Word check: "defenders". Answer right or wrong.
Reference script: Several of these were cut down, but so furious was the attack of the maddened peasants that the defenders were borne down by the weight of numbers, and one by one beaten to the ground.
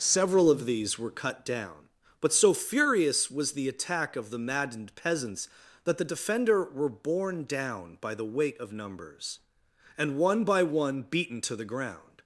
wrong